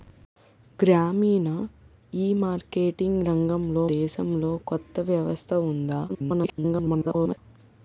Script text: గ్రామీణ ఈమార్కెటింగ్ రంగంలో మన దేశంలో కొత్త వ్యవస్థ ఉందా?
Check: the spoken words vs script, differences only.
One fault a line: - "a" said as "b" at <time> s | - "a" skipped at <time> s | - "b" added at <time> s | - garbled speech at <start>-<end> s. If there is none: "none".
- "మన" skipped at 3.9 s
- garbled speech at 6.1-7.4 s